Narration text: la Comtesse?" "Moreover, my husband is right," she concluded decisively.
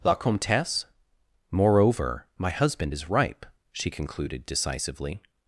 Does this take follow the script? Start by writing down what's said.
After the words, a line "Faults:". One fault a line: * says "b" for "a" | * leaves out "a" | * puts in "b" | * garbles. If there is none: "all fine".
la Comtesse?" "Moreover, my husband is ripe," she concluded decisively.
Faults:
* says "ripe" for "right"